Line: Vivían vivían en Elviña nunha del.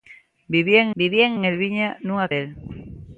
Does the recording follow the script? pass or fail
pass